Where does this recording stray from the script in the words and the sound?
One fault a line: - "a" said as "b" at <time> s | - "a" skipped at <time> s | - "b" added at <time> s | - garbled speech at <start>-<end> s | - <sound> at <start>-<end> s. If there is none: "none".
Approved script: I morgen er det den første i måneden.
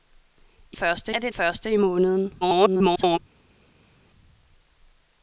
- "morgen" said as "første" at 0.7 s
- "den" skipped at 1.3 s
- garbled speech at 2.4-3.2 s